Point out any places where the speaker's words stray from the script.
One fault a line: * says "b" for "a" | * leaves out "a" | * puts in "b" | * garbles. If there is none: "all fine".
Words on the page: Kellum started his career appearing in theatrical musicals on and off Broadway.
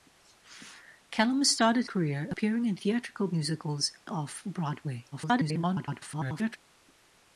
* leaves out "his"
* leaves out "on and"
* garbles